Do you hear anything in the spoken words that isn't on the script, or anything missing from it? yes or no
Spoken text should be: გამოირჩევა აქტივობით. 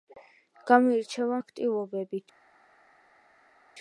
no